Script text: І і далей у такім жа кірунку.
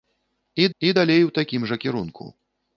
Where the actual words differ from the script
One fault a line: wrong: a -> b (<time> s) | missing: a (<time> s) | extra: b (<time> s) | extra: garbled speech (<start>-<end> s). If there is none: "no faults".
no faults